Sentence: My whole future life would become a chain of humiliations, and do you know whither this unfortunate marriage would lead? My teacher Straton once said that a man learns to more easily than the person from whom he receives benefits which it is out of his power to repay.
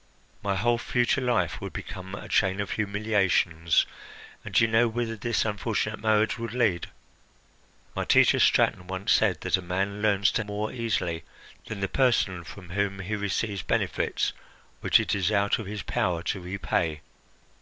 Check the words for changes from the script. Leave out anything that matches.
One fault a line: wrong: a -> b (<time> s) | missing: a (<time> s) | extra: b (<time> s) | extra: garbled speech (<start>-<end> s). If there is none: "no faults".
no faults